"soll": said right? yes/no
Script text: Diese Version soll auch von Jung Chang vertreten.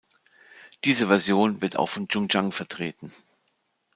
no